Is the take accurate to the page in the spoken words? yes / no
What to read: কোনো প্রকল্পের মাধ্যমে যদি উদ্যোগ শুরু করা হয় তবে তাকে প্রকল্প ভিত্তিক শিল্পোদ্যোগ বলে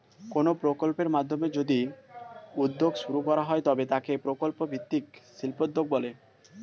yes